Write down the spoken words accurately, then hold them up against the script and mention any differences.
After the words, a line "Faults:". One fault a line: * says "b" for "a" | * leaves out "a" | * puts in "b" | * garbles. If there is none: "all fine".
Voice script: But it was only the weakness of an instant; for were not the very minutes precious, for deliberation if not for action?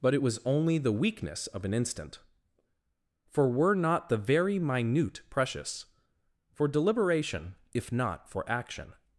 But it was only the weakness of an instant; for were not the very minute precious, for deliberation if not for action?
Faults:
* says "minute" for "minutes"